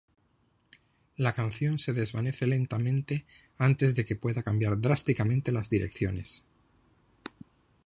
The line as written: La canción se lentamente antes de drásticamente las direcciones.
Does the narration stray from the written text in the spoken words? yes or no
yes